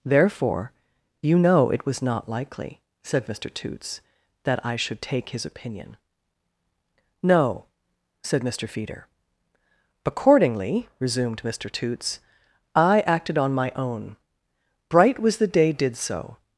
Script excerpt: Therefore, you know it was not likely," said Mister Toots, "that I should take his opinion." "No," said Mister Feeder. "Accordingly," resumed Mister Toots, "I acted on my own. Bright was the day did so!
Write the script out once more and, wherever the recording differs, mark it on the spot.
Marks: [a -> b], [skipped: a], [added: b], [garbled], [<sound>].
Therefore, you know it was not likely," said Mister Toots, "that I should take his opinion." "No," said Mister Feeder. "Accordingly," resumed Mister Toots, "I acted on my own. Bright was the day did so!